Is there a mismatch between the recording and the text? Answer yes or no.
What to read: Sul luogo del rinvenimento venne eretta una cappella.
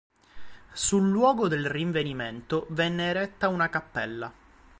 no